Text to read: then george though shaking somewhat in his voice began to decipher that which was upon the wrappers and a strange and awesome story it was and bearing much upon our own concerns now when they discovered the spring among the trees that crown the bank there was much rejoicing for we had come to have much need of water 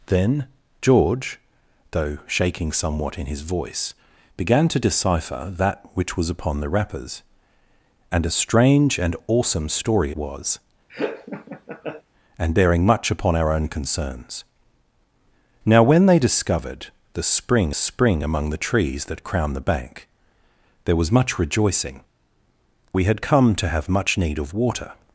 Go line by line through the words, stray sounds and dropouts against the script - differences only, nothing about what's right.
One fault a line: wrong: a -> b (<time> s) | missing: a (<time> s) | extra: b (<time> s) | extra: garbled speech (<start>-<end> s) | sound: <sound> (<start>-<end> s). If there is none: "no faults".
missing: it (10.1 s)
sound: laugh (10.9-12.0 s)
extra: spring (17.7 s)
missing: for (22.0 s)